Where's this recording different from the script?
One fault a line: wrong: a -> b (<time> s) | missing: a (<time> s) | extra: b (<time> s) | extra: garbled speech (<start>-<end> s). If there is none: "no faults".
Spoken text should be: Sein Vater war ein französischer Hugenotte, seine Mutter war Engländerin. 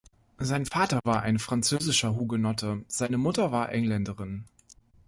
no faults